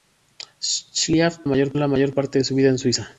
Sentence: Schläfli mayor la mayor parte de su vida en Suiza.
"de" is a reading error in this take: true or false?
false